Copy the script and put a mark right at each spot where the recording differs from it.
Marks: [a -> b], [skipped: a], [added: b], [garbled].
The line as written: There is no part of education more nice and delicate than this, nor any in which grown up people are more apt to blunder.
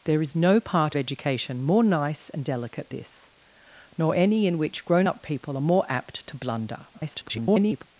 There is no part [skipped: of] education more nice and delicate [skipped: than] this, nor any in which grown up people are more apt to blunder. [garbled]